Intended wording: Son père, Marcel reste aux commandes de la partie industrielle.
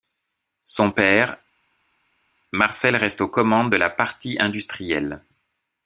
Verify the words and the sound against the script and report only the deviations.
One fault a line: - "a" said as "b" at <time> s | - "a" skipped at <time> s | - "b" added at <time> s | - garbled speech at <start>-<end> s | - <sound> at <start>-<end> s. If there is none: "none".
none